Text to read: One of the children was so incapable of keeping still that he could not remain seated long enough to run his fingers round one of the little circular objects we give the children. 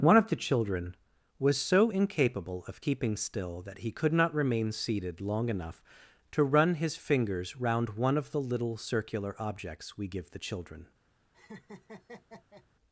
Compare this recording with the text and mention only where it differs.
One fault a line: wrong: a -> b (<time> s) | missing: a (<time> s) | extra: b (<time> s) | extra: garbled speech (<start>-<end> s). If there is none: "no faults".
no faults